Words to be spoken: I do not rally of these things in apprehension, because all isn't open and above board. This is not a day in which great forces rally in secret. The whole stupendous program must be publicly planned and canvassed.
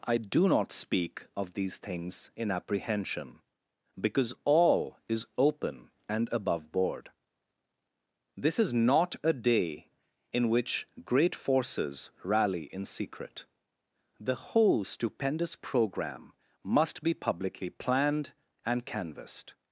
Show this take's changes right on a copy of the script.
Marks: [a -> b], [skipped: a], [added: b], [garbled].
I do not [rally -> speak] of these things in apprehension, because all [isn't -> is] open and above board. This is not a day in which great forces rally in secret. The whole stupendous program must be publicly planned and canvassed.